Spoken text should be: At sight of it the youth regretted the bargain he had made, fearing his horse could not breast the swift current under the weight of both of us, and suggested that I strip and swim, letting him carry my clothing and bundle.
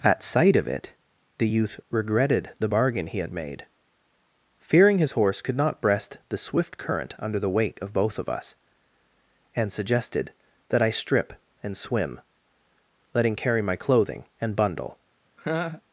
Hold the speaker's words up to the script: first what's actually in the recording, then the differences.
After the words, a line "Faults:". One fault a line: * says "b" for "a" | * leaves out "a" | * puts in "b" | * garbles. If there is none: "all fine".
At sight of it the youth regretted the bargain he had made, fearing his horse could not breast the swift current under the weight of both of us, and suggested that I strip and swim, letting carry my clothing and bundle.
Faults:
* leaves out "him"